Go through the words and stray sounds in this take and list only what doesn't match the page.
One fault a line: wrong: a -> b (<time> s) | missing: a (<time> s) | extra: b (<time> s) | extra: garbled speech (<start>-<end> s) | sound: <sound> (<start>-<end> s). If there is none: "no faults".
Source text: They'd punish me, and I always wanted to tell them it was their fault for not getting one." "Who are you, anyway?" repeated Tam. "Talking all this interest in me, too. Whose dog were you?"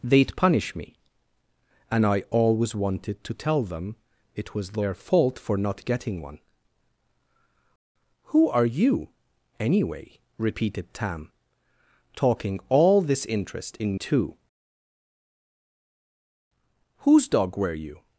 missing: me (13.9 s)